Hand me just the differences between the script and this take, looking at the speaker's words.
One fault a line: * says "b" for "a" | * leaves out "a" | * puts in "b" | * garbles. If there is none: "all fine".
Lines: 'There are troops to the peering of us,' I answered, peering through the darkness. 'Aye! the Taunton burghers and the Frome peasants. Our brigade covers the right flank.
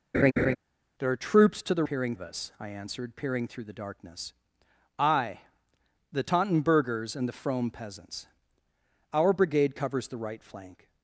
all fine